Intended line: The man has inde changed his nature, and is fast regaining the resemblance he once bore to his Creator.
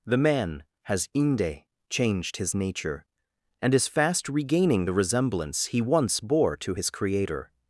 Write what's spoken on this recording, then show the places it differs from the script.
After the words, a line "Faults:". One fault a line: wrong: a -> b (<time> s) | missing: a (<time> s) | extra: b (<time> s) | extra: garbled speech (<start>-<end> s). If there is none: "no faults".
The man has inde changed his nature, and is fast regaining the resemblance he once bore to his Creator.
Faults:
no faults